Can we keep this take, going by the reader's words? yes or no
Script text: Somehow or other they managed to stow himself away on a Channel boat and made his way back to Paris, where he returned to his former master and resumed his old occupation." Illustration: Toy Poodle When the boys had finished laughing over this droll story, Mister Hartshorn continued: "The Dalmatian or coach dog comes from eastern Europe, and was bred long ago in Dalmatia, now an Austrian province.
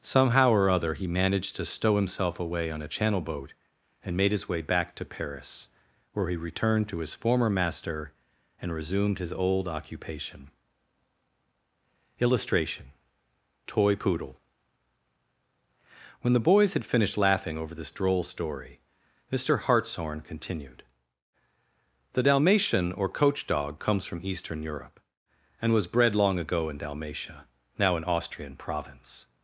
no